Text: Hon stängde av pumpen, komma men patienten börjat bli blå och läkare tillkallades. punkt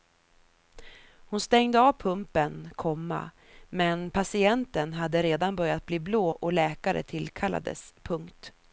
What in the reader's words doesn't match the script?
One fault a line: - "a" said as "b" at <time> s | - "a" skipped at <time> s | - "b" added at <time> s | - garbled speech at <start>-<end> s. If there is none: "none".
- "hade redan" added at 4.9 s